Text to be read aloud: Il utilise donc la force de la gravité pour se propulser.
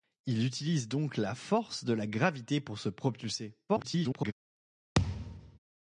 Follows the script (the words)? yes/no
no